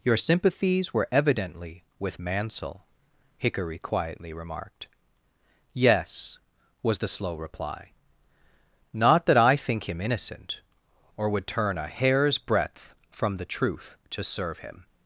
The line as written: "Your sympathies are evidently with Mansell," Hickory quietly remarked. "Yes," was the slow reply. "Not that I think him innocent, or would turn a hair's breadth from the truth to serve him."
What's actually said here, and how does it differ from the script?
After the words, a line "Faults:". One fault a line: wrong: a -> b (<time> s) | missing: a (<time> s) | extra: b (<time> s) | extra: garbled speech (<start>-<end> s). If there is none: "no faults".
"Your sympathies were evidently with Mansell," Hickory quietly remarked. "Yes," was the slow reply. "Not that I think him innocent, or would turn a hair's breadth from the truth to serve him."
Faults:
wrong: are -> were (0.9 s)